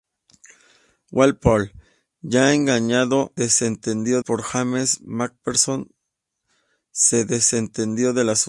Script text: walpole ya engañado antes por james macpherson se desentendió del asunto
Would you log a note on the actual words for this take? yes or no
yes